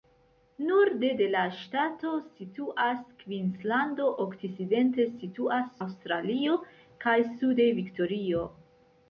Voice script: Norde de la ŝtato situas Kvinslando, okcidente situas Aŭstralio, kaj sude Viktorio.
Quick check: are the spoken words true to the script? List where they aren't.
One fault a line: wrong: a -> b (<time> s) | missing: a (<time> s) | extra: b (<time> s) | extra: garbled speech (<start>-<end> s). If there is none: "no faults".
no faults